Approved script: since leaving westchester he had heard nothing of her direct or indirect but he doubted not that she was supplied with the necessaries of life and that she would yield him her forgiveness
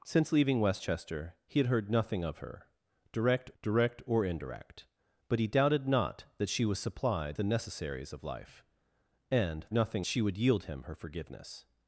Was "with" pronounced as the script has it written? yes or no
no